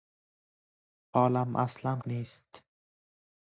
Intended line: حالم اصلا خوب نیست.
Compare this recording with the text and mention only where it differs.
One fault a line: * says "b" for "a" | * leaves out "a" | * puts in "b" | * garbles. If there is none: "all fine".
* leaves out "خوب"